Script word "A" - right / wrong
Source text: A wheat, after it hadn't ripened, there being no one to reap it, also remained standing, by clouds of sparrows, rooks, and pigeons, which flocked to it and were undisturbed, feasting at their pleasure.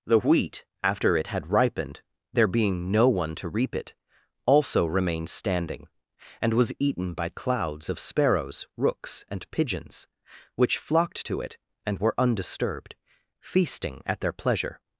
wrong